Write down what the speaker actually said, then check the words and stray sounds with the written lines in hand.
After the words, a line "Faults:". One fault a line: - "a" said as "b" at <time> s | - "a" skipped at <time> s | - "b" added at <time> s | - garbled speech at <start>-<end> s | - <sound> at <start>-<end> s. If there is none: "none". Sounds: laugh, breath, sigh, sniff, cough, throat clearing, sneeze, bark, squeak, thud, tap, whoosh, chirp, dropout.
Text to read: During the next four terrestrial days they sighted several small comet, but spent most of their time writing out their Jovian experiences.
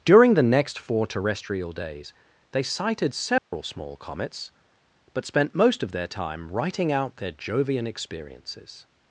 During the next four terrestrial days they sighted several small comets, but spent most of their time writing out their Jovian experiences.
Faults:
- dropout at 3.4-3.5 s
- "comet" said as "comets" at 4.0 s